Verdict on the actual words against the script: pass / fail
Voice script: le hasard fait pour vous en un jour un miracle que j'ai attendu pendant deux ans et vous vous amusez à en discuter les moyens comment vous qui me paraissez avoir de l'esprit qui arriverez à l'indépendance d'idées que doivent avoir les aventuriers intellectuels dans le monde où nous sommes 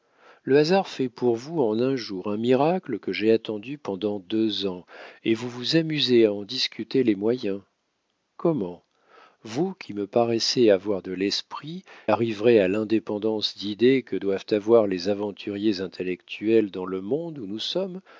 fail